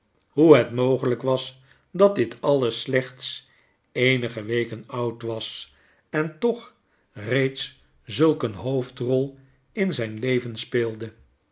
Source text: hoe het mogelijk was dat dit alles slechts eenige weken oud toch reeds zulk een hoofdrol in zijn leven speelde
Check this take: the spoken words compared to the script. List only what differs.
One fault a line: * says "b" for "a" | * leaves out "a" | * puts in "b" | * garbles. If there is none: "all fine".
* puts in "was en"